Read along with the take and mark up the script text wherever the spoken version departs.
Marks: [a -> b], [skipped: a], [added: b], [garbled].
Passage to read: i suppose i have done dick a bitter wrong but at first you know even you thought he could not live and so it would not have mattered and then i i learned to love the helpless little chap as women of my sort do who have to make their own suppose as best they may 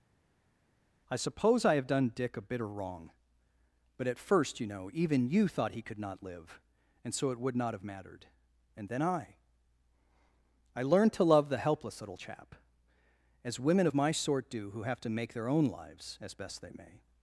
i suppose i have done dick a bitter wrong but at first you know even you thought he could not live and so it would not have mattered and then i i learned to love the helpless little chap as women of my sort do who have to make their own [suppose -> lives] as best they may